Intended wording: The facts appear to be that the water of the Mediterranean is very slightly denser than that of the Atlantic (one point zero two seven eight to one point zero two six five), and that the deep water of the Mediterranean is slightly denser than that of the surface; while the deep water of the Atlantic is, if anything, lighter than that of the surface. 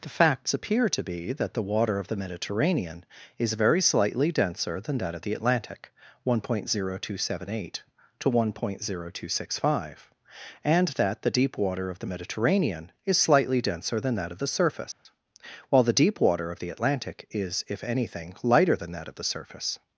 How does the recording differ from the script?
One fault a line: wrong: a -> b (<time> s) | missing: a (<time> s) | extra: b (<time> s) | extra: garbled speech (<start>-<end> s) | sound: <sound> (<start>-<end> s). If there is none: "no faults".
sound: dropout (14.9-15.1 s)